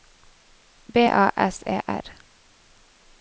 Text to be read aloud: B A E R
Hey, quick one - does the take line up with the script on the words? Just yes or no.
no